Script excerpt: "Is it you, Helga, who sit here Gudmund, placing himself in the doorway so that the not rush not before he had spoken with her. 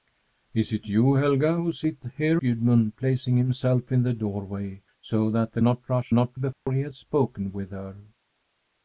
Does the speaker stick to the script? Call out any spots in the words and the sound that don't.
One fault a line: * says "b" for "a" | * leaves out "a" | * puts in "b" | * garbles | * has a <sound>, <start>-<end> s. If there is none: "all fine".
* has a dropout, 6.5-6.7 s